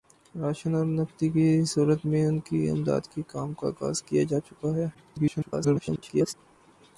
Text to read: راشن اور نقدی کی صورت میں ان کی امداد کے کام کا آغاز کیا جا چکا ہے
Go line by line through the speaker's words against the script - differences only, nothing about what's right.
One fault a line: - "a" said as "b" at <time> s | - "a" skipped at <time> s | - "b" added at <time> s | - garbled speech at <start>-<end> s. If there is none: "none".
- garbled speech at 4.9-6.3 s